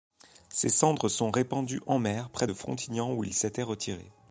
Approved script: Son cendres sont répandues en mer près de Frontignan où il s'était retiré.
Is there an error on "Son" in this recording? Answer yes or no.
yes